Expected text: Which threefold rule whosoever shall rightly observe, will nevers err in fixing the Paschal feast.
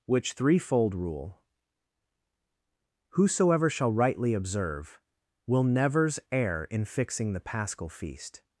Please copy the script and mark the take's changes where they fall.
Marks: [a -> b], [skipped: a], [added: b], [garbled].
Which threefold rule whosoever shall rightly observe, will nevers err in fixing the Paschal feast.